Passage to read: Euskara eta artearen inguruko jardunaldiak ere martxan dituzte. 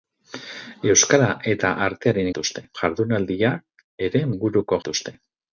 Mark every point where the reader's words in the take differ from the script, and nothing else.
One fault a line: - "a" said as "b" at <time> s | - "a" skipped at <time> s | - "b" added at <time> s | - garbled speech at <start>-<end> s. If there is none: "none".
- "inguruko" said as "dituzte" at 2.3 s
- "martxan" said as "inguruko" at 4.3 s